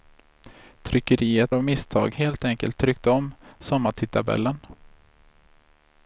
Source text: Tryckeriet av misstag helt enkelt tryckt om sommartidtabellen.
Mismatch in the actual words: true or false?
false